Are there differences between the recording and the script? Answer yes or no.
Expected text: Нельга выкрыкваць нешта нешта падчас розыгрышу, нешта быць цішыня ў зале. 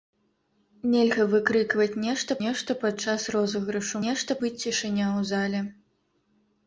no